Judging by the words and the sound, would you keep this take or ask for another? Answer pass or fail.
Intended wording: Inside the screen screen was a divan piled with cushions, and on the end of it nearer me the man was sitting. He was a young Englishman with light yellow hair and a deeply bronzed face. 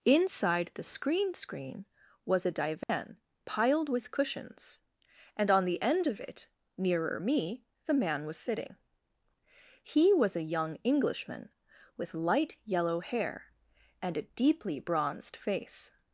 fail